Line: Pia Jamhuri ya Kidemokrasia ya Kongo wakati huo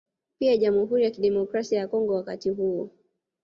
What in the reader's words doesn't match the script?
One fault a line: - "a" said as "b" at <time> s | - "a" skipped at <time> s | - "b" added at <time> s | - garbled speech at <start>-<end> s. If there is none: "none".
none